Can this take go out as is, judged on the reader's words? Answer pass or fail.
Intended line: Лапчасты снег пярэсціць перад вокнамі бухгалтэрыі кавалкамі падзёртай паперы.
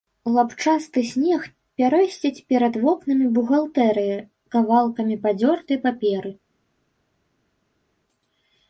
pass